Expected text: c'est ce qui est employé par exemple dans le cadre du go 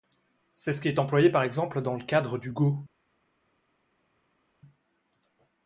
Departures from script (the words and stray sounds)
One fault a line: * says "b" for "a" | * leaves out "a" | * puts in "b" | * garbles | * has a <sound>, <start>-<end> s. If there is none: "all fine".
all fine